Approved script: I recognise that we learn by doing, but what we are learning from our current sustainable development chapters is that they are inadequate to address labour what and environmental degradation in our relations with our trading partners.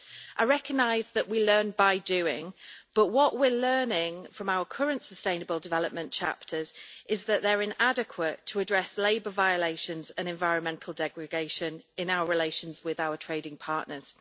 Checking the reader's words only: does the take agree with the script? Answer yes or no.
no